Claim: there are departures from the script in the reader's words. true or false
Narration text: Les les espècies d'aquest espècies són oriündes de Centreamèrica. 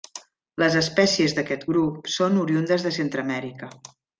true